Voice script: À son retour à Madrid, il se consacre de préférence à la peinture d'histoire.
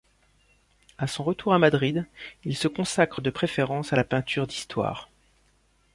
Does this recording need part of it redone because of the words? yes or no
no